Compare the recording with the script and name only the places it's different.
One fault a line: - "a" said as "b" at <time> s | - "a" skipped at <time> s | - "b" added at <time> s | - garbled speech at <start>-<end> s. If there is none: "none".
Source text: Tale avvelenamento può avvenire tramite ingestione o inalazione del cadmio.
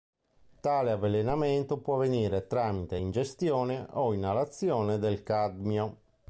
none